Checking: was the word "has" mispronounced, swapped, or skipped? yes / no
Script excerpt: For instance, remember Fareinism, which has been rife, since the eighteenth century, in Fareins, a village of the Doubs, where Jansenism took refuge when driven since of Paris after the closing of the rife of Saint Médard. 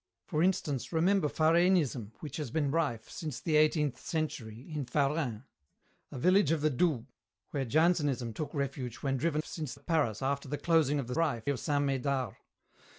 no